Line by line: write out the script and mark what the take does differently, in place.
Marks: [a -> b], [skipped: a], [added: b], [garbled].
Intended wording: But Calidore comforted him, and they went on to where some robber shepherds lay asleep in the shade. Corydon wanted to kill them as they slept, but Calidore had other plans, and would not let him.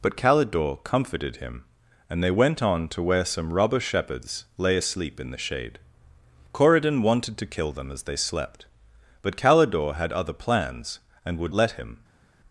But Calidore comforted him, and they went on to where some robber shepherds lay asleep in the shade. Corydon wanted to kill them as they slept, but Calidore had other plans, and would [skipped: not] let him.